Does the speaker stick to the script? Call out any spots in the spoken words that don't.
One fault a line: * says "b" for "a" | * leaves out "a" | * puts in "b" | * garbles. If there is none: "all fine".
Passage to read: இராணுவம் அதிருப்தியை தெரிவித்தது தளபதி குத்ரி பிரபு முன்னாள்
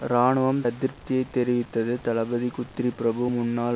all fine